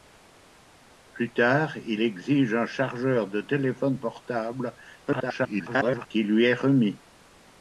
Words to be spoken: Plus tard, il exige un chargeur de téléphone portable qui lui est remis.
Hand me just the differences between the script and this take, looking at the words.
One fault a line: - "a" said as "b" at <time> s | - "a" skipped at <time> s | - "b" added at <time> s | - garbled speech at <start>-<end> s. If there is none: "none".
- garbled speech at 5.1-6.1 s